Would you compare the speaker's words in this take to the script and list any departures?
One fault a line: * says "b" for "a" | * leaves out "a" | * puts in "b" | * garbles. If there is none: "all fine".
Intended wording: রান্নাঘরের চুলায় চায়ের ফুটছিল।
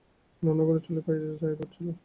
all fine